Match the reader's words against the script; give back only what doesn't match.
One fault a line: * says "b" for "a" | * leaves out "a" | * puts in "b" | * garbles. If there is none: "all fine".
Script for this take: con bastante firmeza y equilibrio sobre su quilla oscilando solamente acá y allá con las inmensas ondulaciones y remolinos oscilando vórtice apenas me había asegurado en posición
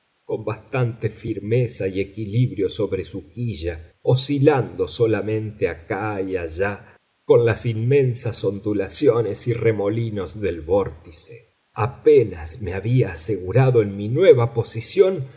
* says "del" for "oscilando"
* puts in "mi nueva"